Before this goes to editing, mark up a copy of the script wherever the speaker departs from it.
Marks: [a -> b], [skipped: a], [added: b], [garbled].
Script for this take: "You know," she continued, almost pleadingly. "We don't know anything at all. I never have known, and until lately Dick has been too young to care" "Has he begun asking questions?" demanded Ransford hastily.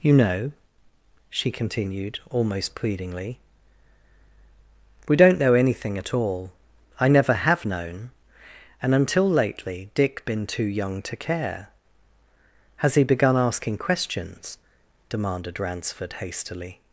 "You know," she continued, almost pleadingly. "We don't know anything at all. I never have known, and until lately Dick [skipped: has] been too young to care" "Has he begun asking questions?" demanded Ransford hastily.